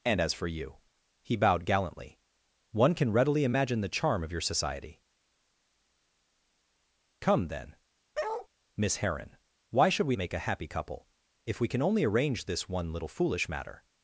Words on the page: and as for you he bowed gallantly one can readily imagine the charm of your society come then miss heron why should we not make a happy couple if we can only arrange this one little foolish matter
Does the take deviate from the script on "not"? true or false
true